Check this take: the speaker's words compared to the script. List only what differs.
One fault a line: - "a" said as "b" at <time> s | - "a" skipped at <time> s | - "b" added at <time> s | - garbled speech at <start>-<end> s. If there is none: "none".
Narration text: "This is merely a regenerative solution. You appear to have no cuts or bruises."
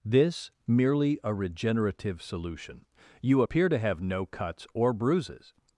- "is" skipped at 0.5 s